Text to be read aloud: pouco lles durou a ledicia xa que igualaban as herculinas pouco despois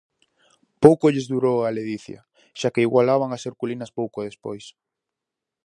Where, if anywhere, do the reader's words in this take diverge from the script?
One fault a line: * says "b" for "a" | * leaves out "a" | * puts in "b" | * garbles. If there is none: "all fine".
all fine